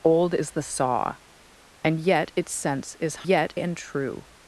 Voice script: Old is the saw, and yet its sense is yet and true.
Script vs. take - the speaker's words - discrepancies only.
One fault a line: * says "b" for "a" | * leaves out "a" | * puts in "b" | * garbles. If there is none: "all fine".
all fine